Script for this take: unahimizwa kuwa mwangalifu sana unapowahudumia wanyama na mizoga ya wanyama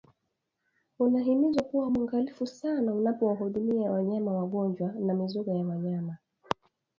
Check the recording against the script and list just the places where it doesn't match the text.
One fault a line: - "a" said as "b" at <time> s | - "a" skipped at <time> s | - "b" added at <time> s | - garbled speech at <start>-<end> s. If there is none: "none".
- "wagonjwa" added at 4.3 s